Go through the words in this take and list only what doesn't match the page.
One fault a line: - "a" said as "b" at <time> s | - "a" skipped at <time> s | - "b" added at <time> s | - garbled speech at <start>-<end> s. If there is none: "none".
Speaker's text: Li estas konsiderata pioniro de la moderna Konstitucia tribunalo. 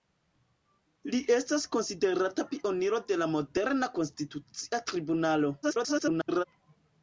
- garbled speech at 5.6-6.4 s